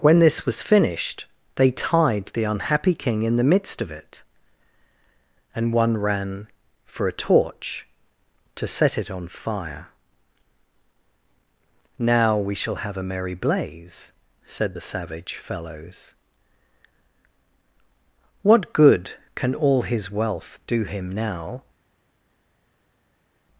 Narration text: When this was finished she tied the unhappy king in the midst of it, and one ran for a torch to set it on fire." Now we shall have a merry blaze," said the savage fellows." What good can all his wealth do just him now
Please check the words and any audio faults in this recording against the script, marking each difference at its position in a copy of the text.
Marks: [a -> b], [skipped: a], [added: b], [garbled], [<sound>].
When this was finished [she -> they] tied the unhappy king in the midst of it, and one ran for a torch to set it on fire." Now we shall have a merry blaze," said the savage fellows." What good can all his wealth do [skipped: just] him now